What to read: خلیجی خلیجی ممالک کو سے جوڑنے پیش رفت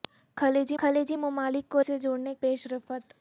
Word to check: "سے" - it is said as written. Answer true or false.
true